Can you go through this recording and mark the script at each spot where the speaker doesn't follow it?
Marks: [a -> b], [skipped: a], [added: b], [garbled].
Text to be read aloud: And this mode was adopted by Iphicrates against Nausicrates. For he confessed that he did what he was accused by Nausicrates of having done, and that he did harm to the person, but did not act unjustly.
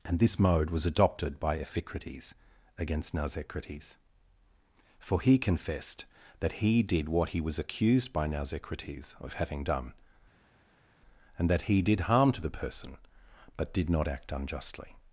And this mode was adopted by Iphicrates against Nausicrates. For he confessed that he did what he was accused by Nausicrates of having done, and that he did harm to the person, but did not act unjustly.